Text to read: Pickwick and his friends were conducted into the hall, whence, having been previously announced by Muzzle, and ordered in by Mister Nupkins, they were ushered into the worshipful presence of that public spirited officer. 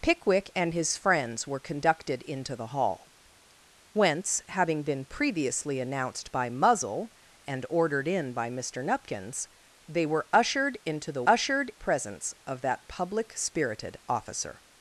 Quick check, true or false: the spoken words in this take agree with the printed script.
false